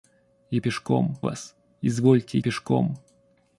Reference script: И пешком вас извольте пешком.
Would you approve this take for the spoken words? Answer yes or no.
yes